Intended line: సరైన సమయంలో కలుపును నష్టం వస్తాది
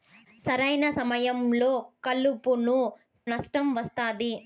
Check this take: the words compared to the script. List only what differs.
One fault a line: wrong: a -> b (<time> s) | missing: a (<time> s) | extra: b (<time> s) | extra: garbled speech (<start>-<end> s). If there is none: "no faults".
no faults